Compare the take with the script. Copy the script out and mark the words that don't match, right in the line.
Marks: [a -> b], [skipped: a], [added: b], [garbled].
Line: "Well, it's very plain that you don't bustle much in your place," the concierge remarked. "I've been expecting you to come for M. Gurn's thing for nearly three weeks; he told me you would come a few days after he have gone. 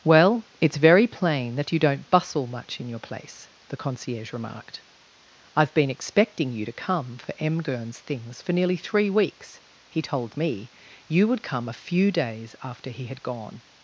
"Well, it's very plain that you don't bustle much in your place," the concierge remarked. "I've been expecting you to come for M. Gurn's [thing -> things] for nearly three weeks; he told me you would come a few days after he [have -> had] gone.